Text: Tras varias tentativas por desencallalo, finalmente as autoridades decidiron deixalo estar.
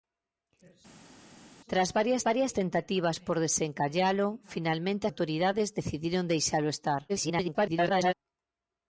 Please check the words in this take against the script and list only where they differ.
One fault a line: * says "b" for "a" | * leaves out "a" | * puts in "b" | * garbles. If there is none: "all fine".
* puts in "varias"
* leaves out "as"
* garbles